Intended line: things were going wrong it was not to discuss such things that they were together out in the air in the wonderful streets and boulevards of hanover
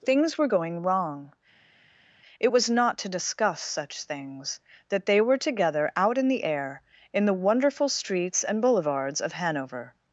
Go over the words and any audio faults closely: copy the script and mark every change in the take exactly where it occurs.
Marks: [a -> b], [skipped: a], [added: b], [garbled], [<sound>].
things were going wrong it was not to discuss such things that they were together out in the air in the wonderful streets and boulevards of hanover